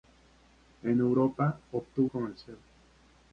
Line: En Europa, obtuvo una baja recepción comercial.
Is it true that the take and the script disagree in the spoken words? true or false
true